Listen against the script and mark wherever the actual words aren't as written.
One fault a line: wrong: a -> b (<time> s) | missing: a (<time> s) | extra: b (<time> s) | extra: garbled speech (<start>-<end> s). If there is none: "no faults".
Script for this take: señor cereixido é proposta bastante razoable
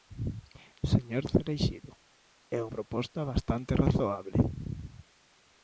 no faults